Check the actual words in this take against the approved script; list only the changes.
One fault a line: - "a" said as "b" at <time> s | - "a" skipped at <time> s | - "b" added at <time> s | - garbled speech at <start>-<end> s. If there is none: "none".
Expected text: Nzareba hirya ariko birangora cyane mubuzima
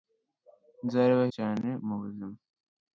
- "hirya ariko birangora" skipped at 1.2 s